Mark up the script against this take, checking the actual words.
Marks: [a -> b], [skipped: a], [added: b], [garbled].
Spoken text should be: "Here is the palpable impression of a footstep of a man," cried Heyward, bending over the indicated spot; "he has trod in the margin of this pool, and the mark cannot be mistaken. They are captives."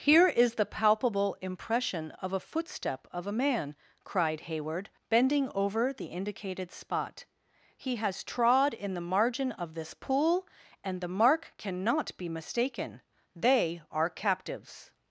"Here is the palpable impression of a footstep of a man," cried Heyward, bending over the indicated spot; "he has trod in the margin of this pool, and the mark cannot be mistaken. They are captives."